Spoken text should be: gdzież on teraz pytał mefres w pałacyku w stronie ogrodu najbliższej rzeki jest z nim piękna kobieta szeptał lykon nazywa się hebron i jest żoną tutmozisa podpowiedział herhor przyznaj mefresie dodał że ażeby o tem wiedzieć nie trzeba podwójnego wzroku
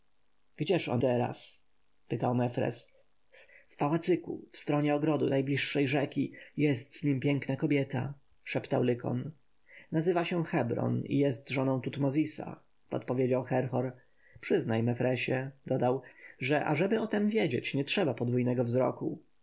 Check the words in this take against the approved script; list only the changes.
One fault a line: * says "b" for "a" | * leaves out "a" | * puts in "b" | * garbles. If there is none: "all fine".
all fine